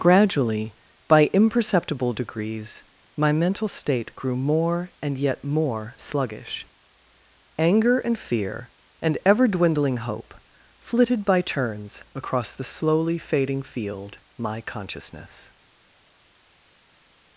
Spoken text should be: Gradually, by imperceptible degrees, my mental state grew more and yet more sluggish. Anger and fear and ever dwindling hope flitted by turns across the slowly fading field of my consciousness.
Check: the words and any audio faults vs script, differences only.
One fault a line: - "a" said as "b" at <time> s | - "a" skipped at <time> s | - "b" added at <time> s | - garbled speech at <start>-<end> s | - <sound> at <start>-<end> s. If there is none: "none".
- "of" skipped at 14.2 s